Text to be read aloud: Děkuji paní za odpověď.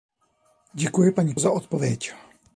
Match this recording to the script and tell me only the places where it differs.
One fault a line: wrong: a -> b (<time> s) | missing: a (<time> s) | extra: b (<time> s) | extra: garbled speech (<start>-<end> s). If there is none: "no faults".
no faults